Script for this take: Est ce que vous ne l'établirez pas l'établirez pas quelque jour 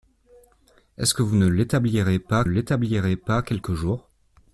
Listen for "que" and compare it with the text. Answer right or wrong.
right